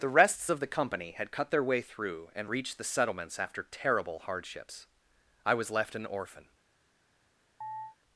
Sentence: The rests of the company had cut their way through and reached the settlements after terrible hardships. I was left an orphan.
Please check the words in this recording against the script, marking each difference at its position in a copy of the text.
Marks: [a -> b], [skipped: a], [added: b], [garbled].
The rests of the company had cut their way through and reached the settlements after terrible hardships. I was left an orphan.